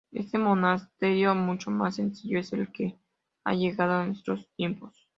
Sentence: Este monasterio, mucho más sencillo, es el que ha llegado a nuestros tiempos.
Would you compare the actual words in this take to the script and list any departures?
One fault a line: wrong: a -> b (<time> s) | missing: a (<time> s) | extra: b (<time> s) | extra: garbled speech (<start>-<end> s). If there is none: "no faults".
no faults